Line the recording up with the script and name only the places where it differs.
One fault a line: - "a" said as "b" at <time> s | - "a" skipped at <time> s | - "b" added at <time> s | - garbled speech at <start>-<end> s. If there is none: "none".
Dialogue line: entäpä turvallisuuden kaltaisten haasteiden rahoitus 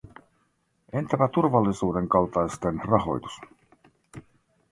- "haasteiden" skipped at 2.8 s